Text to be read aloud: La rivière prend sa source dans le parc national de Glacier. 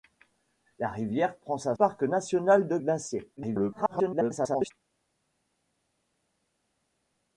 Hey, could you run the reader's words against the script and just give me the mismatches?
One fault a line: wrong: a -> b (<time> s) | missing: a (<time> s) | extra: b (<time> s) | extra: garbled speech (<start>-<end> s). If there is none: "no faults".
missing: source dans le (1.8 s)
extra: garbled speech (3.4-4.7 s)